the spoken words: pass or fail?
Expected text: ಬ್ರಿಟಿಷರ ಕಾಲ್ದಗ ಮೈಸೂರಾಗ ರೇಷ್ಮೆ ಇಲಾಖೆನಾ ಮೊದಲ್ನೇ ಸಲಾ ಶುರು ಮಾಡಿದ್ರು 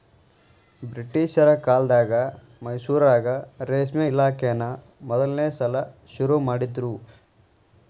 pass